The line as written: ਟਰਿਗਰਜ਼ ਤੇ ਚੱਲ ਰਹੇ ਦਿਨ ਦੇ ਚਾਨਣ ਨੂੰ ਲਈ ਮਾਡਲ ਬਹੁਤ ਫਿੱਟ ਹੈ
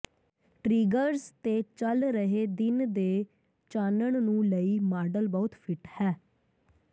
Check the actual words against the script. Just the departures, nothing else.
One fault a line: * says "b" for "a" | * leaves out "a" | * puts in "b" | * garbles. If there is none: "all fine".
all fine